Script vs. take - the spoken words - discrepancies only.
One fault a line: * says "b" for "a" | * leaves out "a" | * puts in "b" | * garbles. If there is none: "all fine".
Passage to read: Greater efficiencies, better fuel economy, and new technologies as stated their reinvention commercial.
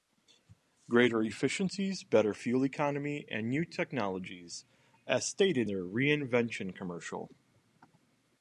all fine